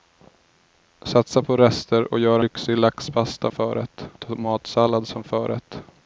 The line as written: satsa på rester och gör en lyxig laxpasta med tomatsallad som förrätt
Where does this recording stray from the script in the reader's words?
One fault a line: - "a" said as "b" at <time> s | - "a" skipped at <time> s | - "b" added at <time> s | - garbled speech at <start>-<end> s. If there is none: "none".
- "en" skipped at 2.4 s
- "med" said as "förrätt" at 3.5 s